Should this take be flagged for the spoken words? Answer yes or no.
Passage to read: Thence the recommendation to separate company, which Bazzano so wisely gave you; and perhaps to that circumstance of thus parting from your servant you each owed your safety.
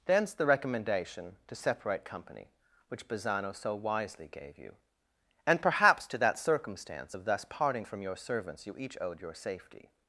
yes